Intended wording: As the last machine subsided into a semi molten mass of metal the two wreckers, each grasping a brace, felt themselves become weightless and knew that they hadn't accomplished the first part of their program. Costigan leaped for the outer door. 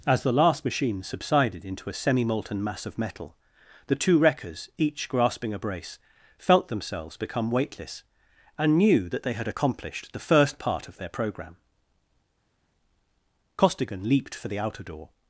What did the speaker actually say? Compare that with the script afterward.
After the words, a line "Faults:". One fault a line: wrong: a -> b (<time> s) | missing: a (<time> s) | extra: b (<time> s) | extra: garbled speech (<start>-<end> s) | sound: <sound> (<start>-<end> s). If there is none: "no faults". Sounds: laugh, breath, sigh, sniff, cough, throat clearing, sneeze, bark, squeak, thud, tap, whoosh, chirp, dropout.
As the last machine subsided into a semi molten mass of metal the two wreckers, each grasping a brace, felt themselves become weightless and knew that they had accomplished the first part of their program. Costigan leaped for the outer door.
Faults:
wrong: hadn't -> had (9.3 s)